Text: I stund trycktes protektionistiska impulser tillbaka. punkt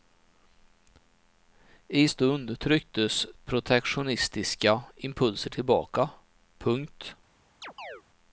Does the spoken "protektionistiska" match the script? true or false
true